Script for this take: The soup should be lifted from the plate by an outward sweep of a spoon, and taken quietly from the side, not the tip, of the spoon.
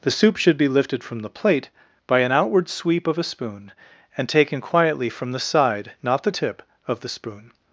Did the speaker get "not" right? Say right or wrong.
right